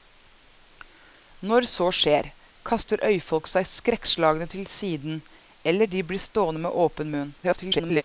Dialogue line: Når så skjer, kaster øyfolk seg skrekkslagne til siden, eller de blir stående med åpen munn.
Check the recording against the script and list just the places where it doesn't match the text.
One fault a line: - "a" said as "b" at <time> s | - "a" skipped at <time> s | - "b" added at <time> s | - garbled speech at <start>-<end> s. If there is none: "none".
- garbled speech at 7.4-8.0 s